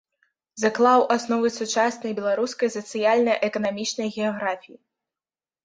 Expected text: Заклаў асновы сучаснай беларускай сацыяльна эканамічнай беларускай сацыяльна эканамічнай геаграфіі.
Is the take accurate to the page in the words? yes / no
no